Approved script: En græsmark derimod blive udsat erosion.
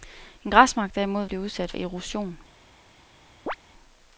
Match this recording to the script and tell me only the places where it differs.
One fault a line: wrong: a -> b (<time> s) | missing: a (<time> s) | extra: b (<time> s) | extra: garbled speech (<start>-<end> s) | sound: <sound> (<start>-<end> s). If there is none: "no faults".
sound: chirp (3.5-3.6 s)